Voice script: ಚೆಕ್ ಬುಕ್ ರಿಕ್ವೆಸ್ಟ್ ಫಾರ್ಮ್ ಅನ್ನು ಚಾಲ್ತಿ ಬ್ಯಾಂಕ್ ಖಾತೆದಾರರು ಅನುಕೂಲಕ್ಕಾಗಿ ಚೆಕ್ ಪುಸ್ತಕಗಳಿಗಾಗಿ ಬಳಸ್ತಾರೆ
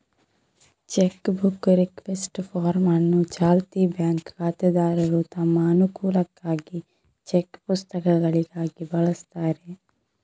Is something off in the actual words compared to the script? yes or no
yes